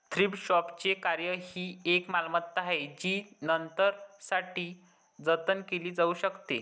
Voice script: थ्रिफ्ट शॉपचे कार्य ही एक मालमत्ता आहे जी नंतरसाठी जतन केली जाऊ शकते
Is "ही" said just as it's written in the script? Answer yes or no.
yes